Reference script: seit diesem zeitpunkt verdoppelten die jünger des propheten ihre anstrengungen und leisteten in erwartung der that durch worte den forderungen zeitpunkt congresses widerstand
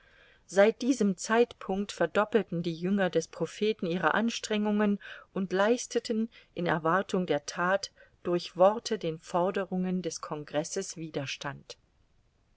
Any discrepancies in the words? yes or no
yes